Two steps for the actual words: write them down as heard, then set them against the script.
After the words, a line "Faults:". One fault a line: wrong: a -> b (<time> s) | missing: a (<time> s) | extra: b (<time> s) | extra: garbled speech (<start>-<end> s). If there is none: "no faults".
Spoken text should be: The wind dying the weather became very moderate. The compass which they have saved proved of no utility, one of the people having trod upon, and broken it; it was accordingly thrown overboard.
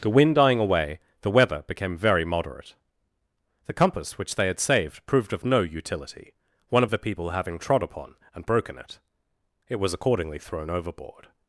The wind dying away, the weather became very moderate. The compass which they had saved proved of no utility, one of the people having trod upon, and broken it; it was accordingly thrown overboard.
Faults:
extra: away (0.6 s)
wrong: have -> had (4.5 s)